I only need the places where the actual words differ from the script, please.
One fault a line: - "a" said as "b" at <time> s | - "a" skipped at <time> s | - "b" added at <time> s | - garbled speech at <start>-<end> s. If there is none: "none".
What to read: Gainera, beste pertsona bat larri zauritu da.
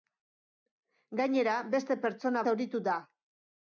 - "bat larri" skipped at 2.5 s